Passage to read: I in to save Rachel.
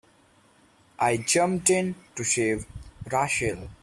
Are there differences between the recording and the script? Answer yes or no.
yes